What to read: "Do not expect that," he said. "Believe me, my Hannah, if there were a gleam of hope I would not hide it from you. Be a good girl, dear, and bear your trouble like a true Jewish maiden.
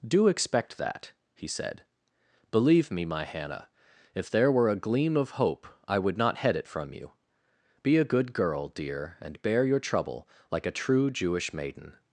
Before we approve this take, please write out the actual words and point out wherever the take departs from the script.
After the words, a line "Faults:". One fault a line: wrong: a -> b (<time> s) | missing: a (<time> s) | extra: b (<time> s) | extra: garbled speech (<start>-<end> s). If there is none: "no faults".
"Do expect that," he said. "Believe me, my Hannah, if there were a gleam of hope I would not head it from you. Be a good girl, dear, and bear your trouble like a true Jewish maiden.
Faults:
missing: not (0.3 s)
wrong: hide -> head (6.4 s)